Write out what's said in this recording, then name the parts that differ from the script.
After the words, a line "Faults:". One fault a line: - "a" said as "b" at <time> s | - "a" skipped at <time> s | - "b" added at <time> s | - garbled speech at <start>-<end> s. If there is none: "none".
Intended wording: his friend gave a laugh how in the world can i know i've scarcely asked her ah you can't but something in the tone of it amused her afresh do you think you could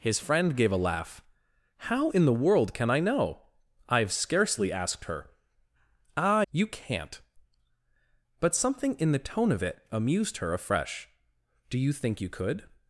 his friend gave a laugh how in the world can i know i've scarcely asked her ah you can't but something in the tone of it amused her afresh do you think you could
Faults:
none